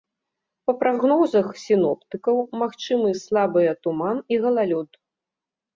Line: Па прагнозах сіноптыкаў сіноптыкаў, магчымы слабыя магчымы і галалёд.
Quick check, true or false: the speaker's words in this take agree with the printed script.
false